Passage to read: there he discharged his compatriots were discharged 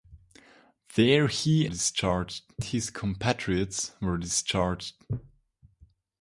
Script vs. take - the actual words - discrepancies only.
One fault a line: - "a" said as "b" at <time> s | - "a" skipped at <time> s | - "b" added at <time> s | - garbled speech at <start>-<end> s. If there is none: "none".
none